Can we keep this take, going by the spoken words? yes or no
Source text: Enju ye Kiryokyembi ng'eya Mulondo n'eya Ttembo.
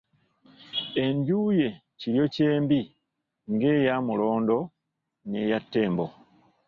yes